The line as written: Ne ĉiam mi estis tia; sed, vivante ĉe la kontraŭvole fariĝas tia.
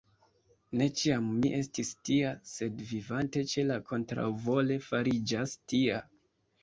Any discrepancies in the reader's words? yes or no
no